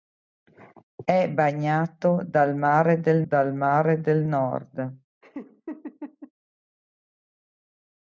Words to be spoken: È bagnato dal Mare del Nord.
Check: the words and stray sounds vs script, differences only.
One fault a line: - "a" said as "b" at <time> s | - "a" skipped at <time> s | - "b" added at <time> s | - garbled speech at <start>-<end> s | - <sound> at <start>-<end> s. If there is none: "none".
- "dal Mare del" added at 3.2 s
- laugh at 5.2-6.3 s